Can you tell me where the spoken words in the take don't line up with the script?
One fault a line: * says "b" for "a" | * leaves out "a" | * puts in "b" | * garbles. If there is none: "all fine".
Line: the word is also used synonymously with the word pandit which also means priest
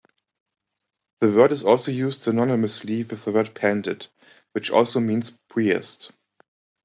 all fine